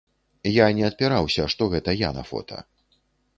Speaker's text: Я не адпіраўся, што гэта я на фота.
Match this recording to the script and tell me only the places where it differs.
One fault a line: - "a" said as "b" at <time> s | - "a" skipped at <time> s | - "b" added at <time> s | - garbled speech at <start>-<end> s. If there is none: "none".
none